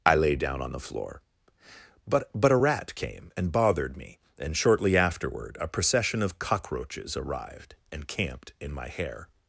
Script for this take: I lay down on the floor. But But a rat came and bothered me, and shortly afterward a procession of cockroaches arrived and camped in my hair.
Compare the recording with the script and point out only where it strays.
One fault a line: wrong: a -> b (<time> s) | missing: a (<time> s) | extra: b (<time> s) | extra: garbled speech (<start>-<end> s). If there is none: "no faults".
no faults